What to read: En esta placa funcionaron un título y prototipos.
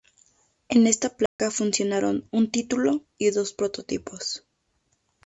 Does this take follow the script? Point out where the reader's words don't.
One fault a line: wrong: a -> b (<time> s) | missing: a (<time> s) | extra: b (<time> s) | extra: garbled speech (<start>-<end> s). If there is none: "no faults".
extra: dos (3.3 s)